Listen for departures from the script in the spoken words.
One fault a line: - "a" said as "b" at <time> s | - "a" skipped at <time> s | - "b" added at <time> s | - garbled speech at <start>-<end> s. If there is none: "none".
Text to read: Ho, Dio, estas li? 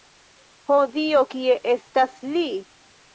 - "kie" added at 1.3 s